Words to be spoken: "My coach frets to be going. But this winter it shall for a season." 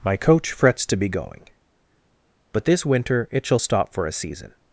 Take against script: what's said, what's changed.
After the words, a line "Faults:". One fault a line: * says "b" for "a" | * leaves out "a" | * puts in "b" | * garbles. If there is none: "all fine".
"My coach frets to be going. But this winter it shall stop for a season."
Faults:
* puts in "stop"